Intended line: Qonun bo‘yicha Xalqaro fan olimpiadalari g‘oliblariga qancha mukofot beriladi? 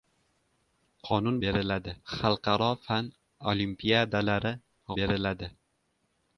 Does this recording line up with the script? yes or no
no